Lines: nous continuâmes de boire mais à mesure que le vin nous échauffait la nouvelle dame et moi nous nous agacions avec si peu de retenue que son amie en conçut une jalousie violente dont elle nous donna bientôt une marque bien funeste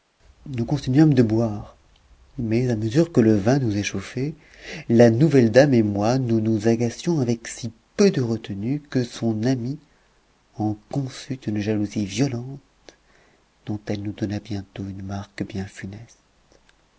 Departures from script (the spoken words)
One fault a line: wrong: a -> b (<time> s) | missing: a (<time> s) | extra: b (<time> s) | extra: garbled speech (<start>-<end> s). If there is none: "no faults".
no faults